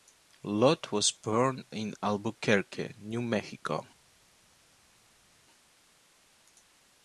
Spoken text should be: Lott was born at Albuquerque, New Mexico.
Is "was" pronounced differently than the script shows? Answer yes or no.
no